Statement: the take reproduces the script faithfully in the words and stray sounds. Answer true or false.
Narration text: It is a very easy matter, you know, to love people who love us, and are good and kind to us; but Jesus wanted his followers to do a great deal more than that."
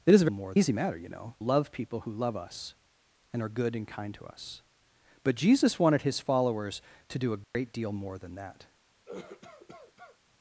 false